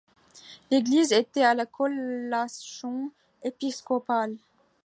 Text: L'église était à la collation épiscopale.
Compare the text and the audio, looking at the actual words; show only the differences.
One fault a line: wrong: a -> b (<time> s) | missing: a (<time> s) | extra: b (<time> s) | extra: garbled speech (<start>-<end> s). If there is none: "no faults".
no faults